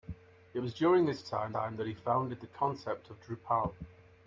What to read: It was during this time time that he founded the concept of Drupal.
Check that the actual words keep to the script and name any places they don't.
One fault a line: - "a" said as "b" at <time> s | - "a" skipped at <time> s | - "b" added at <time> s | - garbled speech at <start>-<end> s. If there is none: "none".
none